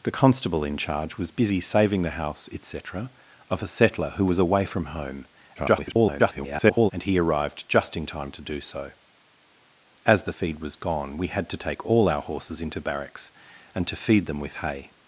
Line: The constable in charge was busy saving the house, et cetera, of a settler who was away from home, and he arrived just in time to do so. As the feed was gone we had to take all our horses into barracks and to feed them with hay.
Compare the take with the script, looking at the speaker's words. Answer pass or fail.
fail